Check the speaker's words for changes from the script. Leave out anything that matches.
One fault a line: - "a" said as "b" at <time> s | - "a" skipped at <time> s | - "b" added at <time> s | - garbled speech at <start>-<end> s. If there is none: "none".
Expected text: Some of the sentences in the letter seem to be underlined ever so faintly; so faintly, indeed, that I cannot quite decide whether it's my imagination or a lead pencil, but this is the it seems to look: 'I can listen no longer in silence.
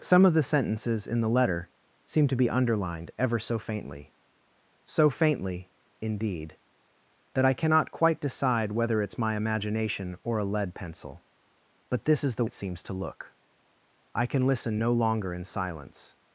none